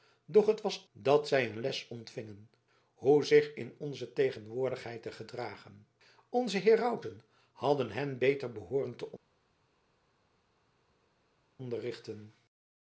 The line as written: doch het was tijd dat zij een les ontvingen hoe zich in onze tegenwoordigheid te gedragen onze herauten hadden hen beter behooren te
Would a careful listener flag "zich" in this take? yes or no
no